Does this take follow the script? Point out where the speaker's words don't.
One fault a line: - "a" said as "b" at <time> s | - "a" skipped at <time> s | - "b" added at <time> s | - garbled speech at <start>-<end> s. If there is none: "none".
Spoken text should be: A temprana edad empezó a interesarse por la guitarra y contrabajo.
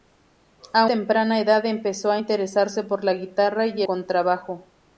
none